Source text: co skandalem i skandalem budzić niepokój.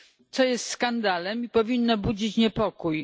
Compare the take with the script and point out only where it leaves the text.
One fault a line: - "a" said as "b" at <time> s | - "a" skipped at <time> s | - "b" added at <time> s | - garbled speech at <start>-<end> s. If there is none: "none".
- "jest" added at 0.4 s
- "skandalem" said as "powinno" at 1.5 s